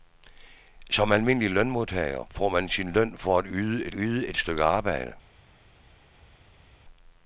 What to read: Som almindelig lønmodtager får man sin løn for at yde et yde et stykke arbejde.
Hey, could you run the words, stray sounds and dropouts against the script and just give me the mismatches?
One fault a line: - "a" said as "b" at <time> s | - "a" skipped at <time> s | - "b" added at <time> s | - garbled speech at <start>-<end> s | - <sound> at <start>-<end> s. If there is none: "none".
none